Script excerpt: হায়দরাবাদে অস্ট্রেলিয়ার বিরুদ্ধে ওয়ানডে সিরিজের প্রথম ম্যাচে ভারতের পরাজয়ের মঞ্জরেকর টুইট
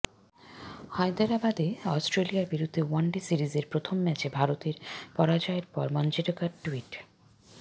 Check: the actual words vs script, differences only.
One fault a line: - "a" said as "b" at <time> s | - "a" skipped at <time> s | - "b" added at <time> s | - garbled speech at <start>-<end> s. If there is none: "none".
- "পর" added at 5.7 s